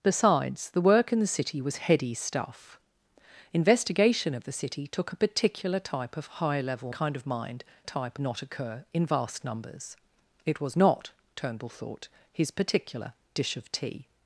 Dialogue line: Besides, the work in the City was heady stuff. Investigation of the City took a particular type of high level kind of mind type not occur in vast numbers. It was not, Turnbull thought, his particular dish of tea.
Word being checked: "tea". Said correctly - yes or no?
yes